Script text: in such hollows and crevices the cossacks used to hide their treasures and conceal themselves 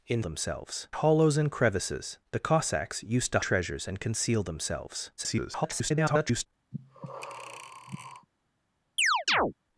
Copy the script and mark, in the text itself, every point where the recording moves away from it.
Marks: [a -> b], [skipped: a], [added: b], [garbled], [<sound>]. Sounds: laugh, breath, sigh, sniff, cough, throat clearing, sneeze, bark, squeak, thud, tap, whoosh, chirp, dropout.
in [such -> themselves] hollows and crevices the cossacks used to [skipped: hide their] treasures and conceal themselves [garbled] [breath] [chirp]